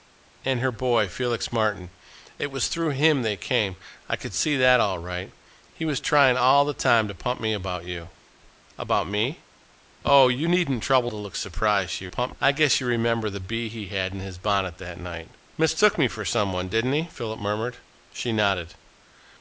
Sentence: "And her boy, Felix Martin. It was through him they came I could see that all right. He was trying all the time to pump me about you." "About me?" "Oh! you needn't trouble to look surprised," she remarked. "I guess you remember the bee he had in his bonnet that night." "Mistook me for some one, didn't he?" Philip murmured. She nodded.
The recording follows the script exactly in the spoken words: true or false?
false